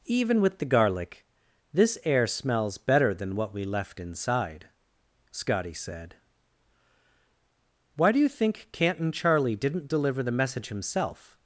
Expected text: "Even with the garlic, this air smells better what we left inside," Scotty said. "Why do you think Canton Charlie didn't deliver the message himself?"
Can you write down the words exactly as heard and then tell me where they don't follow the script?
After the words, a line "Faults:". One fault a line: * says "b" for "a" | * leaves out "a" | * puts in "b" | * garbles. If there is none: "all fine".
"Even with the garlic, this air smells better than what we left inside," Scotty said. "Why do you think Canton Charlie didn't deliver the message himself?"
Faults:
* puts in "than"